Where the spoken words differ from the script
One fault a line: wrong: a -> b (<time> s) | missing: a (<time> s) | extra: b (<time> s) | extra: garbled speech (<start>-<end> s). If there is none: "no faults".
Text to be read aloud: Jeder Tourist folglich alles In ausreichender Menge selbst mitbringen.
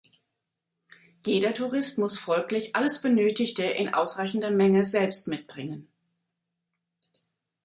extra: muss (2.0 s)
extra: Benötigte (3.0 s)